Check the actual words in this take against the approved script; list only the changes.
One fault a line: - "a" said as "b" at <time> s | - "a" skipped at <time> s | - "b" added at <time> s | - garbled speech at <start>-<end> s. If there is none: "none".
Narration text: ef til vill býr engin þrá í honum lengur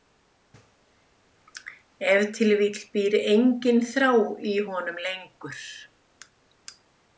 none